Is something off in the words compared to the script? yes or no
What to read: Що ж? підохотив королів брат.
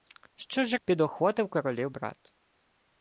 no